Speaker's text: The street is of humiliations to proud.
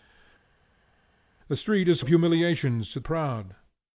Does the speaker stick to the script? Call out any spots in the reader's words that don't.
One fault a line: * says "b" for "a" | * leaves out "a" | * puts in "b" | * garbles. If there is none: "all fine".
all fine